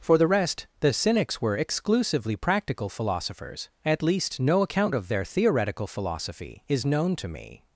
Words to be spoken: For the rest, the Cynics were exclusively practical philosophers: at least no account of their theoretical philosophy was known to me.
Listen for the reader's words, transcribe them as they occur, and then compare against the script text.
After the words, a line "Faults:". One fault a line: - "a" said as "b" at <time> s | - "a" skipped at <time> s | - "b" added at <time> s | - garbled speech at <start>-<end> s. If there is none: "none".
For the rest, the Cynics were exclusively practical philosophers: at least no account of their theoretical philosophy is known to me.
Faults:
- "was" said as "is" at 6.7 s